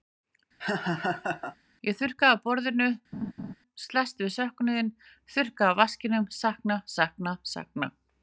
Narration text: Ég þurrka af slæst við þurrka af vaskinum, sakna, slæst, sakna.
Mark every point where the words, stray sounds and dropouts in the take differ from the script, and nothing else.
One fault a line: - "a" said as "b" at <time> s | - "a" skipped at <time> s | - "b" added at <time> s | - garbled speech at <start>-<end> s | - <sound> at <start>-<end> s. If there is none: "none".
- laugh at 0.6-1.6 s
- "borðinu" added at 2.5 s
- laugh at 3.1-3.5 s
- "söknuðinn" added at 4.4 s
- "slæst" said as "sakna" at 7.0 s